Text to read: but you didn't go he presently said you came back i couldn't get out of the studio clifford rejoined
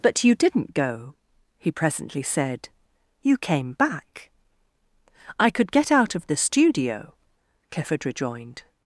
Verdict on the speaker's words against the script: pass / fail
fail